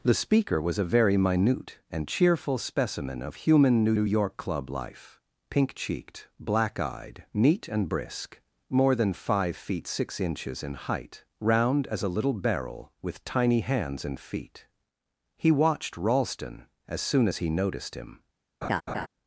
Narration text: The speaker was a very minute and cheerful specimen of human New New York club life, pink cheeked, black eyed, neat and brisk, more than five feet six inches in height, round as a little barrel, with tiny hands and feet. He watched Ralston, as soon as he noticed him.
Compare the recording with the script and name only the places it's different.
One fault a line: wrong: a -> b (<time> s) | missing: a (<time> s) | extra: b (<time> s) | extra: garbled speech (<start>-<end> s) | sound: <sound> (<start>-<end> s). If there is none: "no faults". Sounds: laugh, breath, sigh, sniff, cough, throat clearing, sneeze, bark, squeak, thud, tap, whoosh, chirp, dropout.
sound: laugh (18.6-19.1 s)